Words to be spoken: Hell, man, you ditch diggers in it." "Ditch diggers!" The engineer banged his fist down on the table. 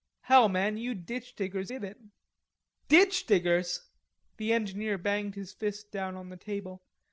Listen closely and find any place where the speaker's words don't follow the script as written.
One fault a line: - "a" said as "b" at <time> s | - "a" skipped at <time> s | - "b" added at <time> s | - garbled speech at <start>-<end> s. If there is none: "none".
none